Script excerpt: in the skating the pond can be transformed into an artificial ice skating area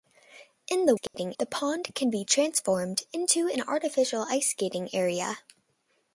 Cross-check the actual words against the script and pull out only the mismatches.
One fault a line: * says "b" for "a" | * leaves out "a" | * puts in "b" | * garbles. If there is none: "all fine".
all fine